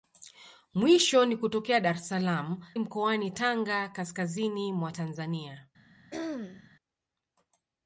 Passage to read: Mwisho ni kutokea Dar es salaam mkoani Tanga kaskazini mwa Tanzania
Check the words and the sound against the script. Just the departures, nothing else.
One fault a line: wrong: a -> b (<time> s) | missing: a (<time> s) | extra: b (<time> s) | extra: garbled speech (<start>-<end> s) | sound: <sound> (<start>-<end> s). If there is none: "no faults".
sound: throat clearing (6.1-6.7 s)